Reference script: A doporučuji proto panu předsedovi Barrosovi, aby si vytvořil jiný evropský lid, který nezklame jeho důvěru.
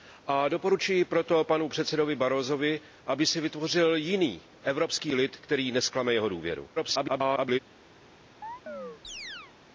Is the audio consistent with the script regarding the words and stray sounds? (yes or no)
no